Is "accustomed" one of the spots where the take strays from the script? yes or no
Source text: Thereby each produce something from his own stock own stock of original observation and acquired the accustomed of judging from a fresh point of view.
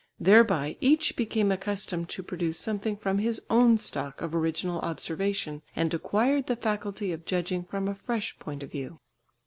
yes